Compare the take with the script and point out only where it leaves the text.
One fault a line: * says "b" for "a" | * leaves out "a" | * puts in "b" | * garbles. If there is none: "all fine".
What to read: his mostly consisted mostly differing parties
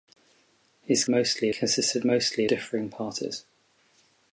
all fine